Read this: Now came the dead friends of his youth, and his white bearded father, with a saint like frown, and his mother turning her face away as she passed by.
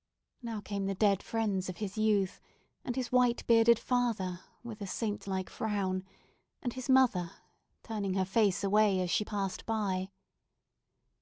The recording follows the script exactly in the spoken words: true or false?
true